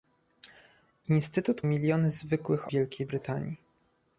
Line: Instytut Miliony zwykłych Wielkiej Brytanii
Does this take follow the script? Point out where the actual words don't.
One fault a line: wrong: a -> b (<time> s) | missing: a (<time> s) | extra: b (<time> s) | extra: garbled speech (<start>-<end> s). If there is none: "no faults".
no faults